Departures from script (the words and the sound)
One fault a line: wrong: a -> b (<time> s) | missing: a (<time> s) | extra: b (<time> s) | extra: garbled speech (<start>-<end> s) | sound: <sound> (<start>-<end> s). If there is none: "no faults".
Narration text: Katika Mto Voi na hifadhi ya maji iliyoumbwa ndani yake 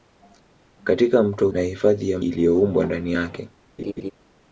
missing: Voi (1.5 s)
missing: maji (2.2 s)
sound: laugh (3.8-4.1 s)